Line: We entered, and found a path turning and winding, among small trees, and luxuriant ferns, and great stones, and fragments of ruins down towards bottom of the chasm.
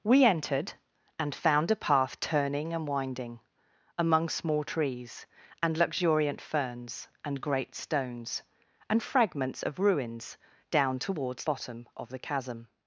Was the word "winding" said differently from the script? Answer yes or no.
no